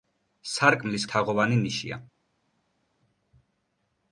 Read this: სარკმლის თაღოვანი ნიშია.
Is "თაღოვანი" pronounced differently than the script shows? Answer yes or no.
no